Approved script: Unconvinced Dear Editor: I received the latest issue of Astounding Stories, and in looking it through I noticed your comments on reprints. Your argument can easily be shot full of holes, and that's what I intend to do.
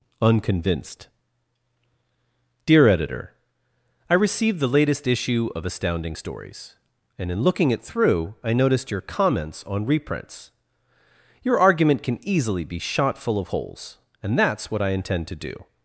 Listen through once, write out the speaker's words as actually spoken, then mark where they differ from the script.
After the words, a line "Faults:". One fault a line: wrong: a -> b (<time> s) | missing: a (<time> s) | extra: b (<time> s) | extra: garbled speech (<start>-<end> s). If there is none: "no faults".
Unconvinced Dear Editor: I received the latest issue of Astounding Stories, and in looking it through I noticed your comments on reprints. Your argument can easily be shot full of holes, and that's what I intend to do.
Faults:
no faults